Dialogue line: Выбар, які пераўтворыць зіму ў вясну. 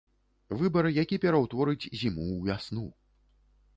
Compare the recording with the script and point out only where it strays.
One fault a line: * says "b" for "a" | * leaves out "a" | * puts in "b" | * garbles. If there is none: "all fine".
all fine